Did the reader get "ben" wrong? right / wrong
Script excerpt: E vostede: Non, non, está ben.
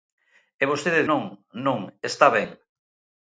right